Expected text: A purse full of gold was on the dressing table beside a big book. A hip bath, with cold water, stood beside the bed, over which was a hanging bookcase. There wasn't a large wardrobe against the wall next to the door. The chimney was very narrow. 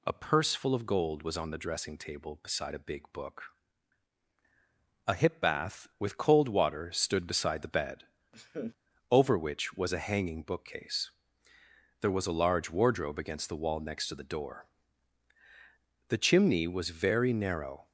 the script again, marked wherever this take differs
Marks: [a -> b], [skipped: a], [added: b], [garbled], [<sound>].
A purse full of gold was on the dressing table beside a big book. A hip bath, with cold water, stood beside the bed, [laugh] over which was a hanging bookcase. There [wasn't -> was] a large wardrobe against the wall next to the door. The chimney was very narrow.